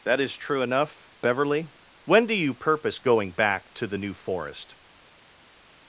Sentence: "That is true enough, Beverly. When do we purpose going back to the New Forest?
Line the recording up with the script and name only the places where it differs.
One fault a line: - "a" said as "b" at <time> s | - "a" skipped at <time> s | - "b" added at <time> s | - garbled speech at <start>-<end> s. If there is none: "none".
- "we" said as "you" at 2.3 s